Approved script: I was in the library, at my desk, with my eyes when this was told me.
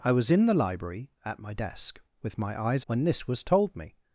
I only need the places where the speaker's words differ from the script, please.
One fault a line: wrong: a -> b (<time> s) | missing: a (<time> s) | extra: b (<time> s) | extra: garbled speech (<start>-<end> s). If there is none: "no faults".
no faults